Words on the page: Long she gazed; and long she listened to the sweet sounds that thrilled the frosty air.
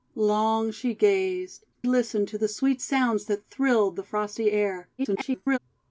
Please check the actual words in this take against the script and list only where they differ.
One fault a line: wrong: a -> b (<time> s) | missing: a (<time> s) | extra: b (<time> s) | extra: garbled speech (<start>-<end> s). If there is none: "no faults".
missing: and long she (1.7 s)
extra: garbled speech (5.0-5.6 s)